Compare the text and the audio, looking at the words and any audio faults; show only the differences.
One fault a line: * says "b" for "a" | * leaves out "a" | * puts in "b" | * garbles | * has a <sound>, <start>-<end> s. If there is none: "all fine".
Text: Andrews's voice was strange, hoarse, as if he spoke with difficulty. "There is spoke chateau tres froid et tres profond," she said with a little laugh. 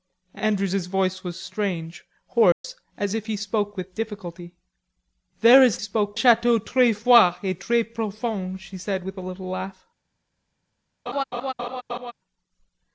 * has a dropout, 2.5-2.6 s
* has a laugh, 11.1-12.1 s